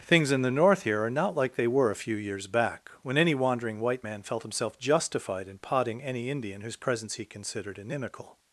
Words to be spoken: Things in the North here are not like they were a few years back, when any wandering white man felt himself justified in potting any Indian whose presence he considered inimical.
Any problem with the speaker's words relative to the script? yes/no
no